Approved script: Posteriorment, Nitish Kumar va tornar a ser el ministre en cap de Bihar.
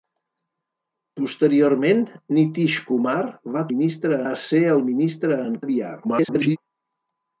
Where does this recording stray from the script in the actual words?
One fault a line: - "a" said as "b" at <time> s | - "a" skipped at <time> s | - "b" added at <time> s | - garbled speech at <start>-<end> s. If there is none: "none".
- "tornar" said as "ministre" at 3.7 s
- "cap" skipped at 5.6 s
- garbled speech at 6.0-6.6 s